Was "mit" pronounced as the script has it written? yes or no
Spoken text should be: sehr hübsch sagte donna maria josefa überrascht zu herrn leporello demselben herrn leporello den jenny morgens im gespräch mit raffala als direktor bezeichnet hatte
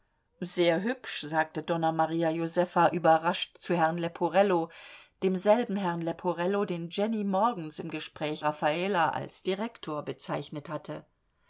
no